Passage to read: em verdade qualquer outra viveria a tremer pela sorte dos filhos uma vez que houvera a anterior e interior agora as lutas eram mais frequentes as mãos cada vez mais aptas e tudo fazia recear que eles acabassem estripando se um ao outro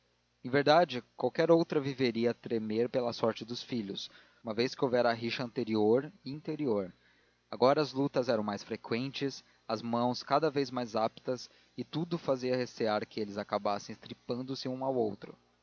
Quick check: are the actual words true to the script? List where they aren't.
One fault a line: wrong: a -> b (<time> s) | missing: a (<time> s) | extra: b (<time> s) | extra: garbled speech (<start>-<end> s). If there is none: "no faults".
extra: rixa (5.1 s)